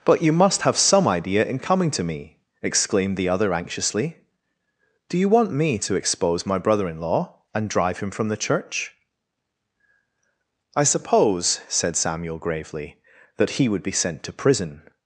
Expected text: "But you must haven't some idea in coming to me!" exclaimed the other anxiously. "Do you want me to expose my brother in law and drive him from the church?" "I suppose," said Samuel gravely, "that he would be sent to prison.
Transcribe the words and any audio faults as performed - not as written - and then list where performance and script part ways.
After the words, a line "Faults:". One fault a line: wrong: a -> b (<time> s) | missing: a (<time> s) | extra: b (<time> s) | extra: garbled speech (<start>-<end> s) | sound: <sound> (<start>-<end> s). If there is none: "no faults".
"But you must have some idea in coming to me!" exclaimed the other anxiously. "Do you want me to expose my brother in law and drive him from the church?" "I suppose," said Samuel gravely, "that he would be sent to prison.
Faults:
wrong: haven't -> have (0.6 s)